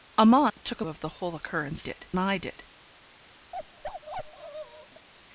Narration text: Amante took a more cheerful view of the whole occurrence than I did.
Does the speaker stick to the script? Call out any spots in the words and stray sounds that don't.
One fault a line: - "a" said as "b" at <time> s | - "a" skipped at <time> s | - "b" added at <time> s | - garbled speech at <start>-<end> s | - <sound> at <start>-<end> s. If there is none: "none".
- dropout at 0.5-0.6 s
- "more cheerful view" skipped at 0.8 s
- "than" said as "did" at 1.8 s
- bark at 3.5-5.1 s